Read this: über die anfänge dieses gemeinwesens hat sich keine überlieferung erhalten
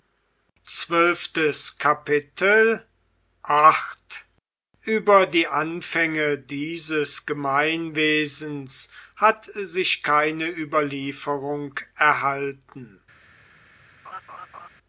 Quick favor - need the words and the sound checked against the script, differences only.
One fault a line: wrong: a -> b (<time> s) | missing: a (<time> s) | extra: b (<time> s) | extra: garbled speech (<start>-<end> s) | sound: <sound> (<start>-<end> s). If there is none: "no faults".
sound: laugh (14.0-14.7 s)